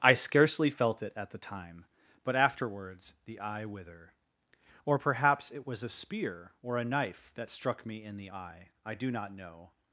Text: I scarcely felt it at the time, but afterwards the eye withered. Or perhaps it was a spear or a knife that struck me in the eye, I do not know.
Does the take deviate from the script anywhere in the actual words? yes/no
yes